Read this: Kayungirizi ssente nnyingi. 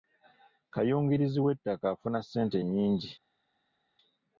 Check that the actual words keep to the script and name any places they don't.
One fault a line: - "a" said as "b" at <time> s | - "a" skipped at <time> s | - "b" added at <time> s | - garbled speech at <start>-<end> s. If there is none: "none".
- "w'ettaka afuna" added at 1.4 s